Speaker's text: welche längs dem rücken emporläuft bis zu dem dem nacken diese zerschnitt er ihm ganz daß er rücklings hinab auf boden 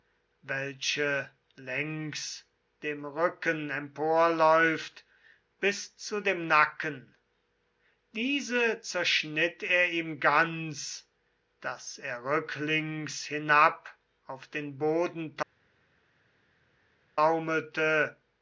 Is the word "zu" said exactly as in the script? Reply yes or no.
yes